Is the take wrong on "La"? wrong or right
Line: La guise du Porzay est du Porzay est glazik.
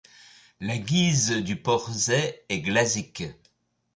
right